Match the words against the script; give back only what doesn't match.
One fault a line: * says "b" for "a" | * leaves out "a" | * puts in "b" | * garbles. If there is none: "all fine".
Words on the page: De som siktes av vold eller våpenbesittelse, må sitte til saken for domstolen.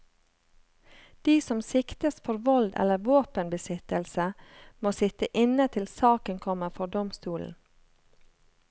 * says "for" for "av"
* puts in "inne"
* puts in "kommer"